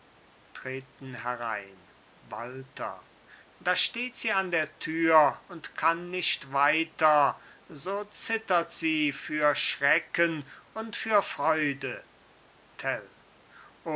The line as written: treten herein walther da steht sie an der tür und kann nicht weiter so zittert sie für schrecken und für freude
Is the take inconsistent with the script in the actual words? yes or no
no